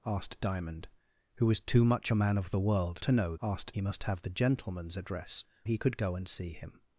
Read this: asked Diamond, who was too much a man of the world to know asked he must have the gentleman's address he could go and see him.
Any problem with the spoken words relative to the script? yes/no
no